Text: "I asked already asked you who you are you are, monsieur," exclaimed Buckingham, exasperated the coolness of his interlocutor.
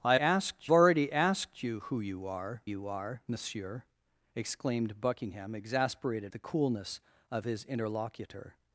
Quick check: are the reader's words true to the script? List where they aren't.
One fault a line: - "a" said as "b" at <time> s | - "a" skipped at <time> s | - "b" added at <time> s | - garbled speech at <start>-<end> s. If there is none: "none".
none